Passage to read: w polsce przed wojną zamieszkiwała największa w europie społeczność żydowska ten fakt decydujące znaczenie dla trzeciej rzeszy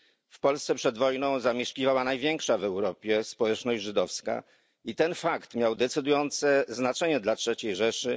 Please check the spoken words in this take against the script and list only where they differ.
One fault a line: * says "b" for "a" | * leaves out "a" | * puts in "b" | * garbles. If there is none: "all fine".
* puts in "i"
* puts in "miał"